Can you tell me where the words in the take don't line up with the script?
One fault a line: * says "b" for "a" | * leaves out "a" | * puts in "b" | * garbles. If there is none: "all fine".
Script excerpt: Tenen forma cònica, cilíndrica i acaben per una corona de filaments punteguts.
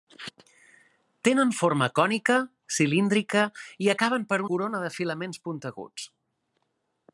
* leaves out "una"